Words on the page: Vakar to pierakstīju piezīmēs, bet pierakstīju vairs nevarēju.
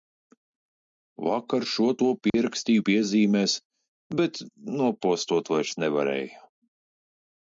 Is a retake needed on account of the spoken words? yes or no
yes